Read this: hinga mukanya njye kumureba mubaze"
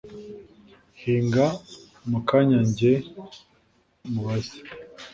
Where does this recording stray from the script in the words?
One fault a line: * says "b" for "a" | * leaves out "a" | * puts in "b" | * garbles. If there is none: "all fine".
* leaves out "kumureba"